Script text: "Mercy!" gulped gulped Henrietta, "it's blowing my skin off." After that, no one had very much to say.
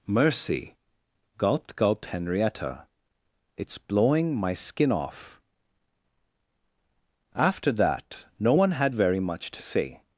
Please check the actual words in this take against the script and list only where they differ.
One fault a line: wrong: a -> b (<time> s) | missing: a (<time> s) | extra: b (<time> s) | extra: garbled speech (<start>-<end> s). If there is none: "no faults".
no faults